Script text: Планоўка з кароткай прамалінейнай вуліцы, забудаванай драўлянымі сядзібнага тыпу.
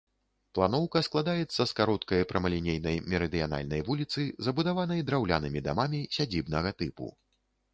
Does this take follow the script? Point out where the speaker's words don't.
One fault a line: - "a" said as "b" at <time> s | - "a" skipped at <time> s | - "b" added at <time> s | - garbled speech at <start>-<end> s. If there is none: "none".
- "складаецца" added at 1.1 s
- "мерыдыянальнай" added at 3.1 s
- "дамамі" added at 5.7 s